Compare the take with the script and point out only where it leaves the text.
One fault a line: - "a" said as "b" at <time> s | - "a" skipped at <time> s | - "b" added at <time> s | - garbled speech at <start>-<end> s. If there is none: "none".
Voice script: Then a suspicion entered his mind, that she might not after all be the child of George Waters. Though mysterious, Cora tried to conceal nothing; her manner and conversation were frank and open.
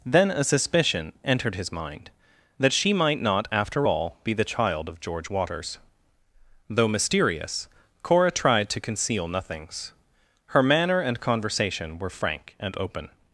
- "nothing" said as "nothings" at 9.3 s